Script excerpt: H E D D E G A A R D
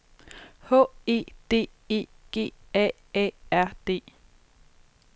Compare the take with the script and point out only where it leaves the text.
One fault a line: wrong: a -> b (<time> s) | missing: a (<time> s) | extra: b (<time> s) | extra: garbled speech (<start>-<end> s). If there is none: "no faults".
missing: D (1.7 s)